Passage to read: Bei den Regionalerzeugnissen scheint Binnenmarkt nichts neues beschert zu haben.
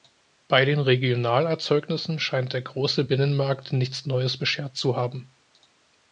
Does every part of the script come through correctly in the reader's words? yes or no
no